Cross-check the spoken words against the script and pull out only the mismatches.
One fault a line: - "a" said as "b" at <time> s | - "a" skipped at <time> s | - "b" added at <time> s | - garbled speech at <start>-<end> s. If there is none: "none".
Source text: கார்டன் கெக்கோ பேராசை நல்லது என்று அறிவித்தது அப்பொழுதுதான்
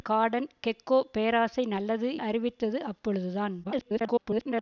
- "என்று" skipped at 2.1 s
- garbled speech at 3.6-4.6 s